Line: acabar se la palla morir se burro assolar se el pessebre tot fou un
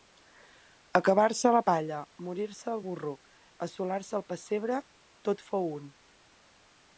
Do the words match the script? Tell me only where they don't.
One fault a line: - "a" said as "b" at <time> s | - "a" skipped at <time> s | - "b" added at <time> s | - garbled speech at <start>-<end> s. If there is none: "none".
- "el" added at 2.7 s